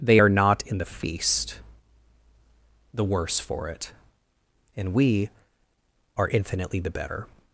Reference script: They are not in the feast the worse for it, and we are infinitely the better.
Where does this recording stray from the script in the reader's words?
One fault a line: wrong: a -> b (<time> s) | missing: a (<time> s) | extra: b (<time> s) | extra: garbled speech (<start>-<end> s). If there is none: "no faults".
no faults